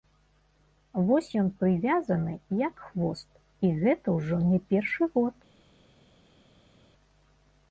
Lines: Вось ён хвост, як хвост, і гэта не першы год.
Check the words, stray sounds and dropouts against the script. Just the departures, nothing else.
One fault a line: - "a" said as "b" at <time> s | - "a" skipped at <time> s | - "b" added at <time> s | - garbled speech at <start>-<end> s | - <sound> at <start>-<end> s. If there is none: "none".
- "хвост" said as "прывязаны" at 1.6 s
- "ўжо" added at 4.2 s